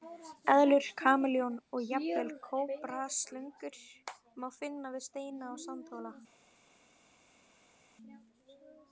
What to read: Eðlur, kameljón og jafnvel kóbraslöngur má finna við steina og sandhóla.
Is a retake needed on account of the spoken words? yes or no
no